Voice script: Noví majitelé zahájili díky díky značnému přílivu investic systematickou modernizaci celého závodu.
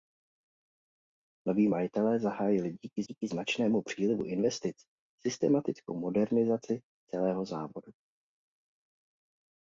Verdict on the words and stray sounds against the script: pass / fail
pass